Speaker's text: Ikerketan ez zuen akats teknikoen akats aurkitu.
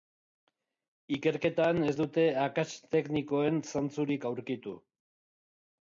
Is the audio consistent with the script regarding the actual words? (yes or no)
no